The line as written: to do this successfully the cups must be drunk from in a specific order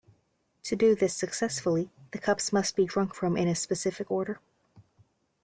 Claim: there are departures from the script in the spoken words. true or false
false